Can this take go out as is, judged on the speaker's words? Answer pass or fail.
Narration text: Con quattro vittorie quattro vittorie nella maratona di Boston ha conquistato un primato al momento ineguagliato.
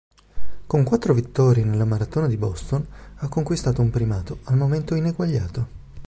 fail